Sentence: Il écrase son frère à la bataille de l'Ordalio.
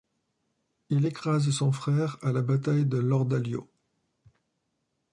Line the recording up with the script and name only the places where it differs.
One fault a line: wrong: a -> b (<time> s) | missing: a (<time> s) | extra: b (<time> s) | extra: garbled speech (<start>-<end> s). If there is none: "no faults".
no faults